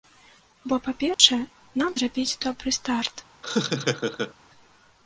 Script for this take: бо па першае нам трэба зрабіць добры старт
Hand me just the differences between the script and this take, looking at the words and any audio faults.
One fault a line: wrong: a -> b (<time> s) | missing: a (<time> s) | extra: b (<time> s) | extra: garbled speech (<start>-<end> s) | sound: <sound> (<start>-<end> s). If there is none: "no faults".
sound: dropout (1.1-1.2 s)
missing: трэба (1.9 s)
sound: laugh (3.4-4.3 s)